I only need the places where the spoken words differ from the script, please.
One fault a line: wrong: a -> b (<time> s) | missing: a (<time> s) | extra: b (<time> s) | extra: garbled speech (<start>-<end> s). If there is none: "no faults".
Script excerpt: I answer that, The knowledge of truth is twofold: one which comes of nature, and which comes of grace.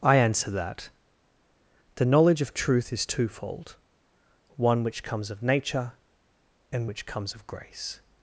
no faults